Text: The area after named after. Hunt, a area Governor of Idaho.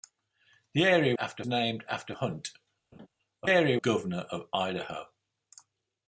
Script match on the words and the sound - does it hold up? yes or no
no